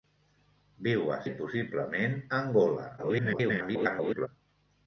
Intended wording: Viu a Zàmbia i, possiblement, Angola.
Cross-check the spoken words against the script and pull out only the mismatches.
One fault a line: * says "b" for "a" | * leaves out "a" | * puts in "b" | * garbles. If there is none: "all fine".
* leaves out "Zàmbia"
* garbles